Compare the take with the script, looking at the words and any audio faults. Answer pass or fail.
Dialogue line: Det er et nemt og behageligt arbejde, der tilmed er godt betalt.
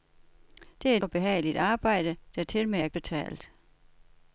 fail